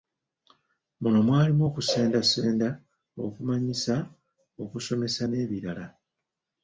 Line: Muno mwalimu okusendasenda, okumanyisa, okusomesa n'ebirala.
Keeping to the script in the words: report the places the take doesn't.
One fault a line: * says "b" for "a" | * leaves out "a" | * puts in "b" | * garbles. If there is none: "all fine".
all fine